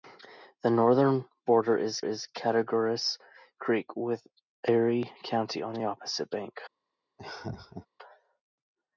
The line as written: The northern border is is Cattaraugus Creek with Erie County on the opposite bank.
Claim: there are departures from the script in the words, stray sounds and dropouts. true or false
true